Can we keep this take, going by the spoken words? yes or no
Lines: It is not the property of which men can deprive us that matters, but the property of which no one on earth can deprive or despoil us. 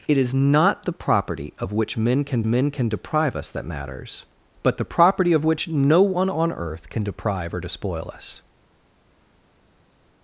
no